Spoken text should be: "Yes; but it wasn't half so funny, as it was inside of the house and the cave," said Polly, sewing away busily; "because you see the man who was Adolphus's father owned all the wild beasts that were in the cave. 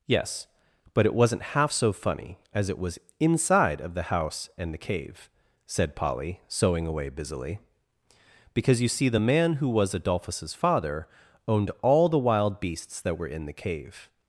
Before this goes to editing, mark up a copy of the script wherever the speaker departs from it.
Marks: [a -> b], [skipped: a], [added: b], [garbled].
"Yes; but it wasn't half so funny, as it was inside of the house and the cave," said Polly, sewing away busily; "because you see the man who was Adolphus's father owned all the wild beasts that were in the cave.